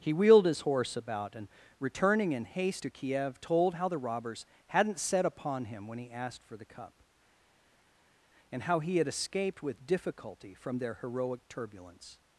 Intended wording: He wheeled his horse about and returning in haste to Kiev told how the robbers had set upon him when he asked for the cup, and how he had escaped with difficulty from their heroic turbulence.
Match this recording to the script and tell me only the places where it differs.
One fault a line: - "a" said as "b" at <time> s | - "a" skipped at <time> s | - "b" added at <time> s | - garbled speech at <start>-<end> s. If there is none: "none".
- "had" said as "hadn't" at 4.7 s